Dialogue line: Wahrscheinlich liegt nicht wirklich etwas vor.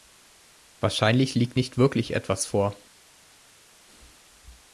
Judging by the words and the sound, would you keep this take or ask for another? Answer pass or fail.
pass